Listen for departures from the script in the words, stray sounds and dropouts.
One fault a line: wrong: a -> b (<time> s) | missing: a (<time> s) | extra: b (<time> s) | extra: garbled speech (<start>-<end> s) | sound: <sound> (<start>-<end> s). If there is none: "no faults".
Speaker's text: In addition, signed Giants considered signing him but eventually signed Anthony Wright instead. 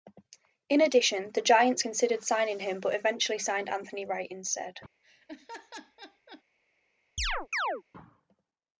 wrong: signed -> the (1.3 s)
sound: laugh (5.0-6.4 s)
sound: chirp (7.2-7.8 s)